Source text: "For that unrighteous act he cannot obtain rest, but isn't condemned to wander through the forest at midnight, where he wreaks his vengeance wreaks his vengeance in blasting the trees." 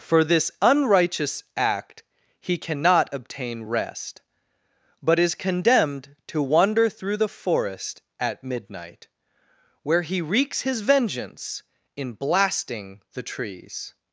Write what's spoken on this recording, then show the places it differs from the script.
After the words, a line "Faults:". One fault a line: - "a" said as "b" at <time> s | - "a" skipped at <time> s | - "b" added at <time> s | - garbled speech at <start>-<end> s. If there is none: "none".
"For this unrighteous act he cannot obtain rest, but is condemned to wander through the forest at midnight, where he wreaks his vengeance in blasting the trees."
Faults:
- "that" said as "this" at 0.2 s
- "isn't" said as "is" at 5.2 s
- "wreaks his vengeance" skipped at 11.6 s